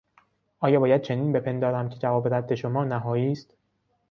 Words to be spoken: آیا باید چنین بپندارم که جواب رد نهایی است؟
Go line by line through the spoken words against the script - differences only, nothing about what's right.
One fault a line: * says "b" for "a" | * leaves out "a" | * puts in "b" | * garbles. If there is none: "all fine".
* puts in "شما"